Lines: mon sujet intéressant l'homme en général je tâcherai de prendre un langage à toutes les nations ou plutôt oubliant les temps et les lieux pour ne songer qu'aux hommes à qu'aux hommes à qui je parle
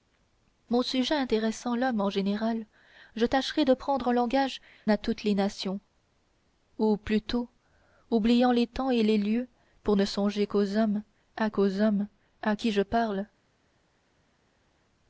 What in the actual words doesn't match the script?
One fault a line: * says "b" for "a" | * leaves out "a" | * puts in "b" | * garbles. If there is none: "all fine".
all fine